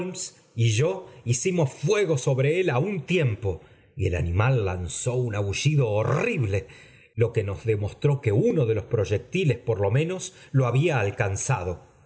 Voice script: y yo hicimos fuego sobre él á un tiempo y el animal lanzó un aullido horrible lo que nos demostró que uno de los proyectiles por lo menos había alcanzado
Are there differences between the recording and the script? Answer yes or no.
yes